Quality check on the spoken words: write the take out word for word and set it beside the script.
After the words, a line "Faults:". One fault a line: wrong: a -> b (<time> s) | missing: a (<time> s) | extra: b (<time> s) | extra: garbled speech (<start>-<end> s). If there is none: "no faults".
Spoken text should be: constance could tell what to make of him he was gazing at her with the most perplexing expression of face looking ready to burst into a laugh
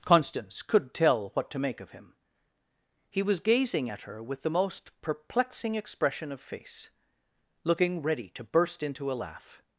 constance could tell what to make of him he was gazing at her with the most perplexing expression of face looking ready to burst into a laugh
Faults:
no faults